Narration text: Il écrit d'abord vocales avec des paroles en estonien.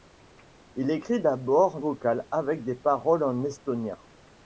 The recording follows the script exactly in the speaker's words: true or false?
true